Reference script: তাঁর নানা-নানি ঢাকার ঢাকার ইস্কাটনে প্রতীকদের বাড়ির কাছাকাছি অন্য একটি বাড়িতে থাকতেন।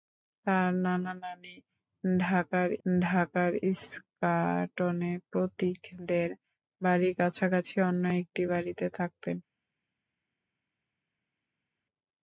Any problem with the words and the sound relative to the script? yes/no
no